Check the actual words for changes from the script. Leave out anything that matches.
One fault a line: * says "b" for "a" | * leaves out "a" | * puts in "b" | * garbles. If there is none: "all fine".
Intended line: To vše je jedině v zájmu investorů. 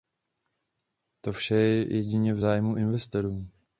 all fine